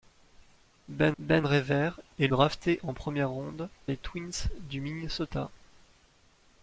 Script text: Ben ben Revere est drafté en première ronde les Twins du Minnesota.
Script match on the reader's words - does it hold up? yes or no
yes